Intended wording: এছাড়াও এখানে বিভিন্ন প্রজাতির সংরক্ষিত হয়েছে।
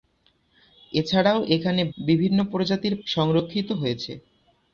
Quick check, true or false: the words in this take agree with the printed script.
true